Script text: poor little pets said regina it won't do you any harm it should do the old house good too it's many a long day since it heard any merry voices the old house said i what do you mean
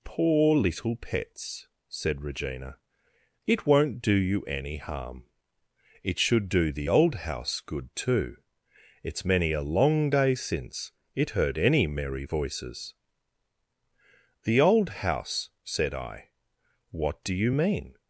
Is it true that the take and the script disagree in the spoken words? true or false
false